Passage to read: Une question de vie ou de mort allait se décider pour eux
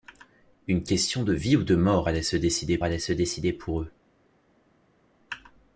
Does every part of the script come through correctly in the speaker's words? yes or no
no